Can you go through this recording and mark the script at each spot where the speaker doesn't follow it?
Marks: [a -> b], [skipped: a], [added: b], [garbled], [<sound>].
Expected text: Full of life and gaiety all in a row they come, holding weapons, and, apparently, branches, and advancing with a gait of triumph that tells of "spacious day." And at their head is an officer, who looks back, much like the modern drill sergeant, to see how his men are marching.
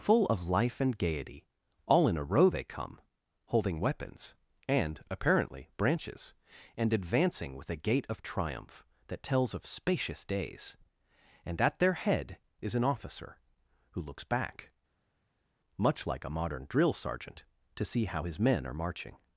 Full of life and gaiety all in a row they come, holding weapons, and, apparently, branches, and advancing with a gait of triumph that tells of "spacious [day." -> days] And at their head is an officer, who looks back, much like [the -> a] modern drill sergeant, to see how his men are marching.